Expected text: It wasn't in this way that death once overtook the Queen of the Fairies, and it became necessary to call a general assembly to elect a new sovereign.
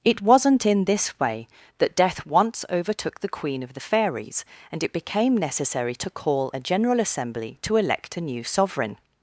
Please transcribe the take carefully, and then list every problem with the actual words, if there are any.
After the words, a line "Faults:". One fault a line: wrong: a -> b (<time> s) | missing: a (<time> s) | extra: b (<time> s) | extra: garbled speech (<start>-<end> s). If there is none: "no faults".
It wasn't in this way that death once overtook the Queen of the Fairies, and it became necessary to call a general assembly to elect a new sovereign.
Faults:
no faults